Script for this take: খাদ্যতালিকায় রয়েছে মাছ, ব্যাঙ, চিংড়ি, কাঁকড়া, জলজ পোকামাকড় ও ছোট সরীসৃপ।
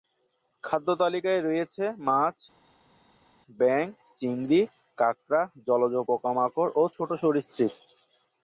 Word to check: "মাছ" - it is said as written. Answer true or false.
true